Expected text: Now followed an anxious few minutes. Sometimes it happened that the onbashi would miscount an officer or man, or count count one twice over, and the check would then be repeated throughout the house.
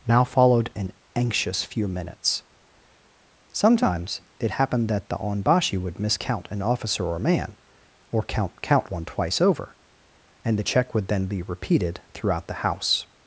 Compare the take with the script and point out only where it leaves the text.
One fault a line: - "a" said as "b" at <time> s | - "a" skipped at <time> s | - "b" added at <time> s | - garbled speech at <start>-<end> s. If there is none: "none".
none